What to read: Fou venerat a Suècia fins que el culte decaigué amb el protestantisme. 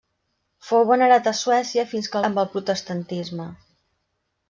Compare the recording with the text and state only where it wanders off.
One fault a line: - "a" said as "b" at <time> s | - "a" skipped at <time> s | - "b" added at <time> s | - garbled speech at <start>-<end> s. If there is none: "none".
- "el culte decaigué" skipped at 2.2 s